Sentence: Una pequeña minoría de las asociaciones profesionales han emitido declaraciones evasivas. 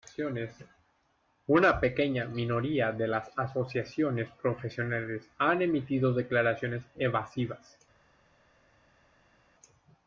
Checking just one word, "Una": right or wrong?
right